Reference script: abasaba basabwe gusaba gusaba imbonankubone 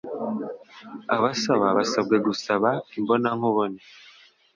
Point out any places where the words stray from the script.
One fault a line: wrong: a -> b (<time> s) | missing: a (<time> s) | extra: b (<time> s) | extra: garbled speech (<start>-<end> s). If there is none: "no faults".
missing: gusaba (2.7 s)